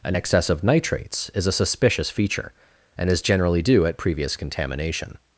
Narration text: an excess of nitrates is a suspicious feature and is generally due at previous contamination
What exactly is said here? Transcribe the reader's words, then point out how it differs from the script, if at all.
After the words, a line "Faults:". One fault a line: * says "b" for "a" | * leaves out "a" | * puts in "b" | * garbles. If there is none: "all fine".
an excess of nitrates is a suspicious feature and is generally due at previous contamination
Faults:
all fine